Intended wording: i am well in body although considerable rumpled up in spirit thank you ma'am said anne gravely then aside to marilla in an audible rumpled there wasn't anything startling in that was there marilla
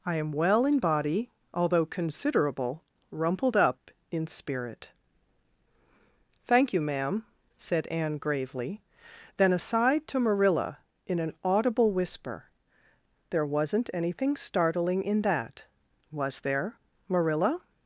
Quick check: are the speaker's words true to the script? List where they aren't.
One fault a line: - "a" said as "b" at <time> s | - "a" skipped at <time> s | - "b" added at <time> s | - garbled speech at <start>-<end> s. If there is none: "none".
- "rumpled" said as "whisper" at 11.9 s